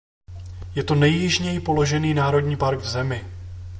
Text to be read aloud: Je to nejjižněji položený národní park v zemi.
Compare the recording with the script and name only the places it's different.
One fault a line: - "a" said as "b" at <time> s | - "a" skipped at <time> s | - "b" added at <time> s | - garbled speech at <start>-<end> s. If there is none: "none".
none